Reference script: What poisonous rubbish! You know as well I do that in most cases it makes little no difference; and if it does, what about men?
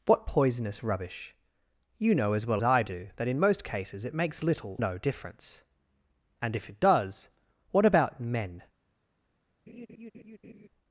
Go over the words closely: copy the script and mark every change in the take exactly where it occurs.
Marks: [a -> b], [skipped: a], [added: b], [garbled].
What poisonous rubbish! You know as well I do that in most cases it makes little no difference; and if it does, what about men?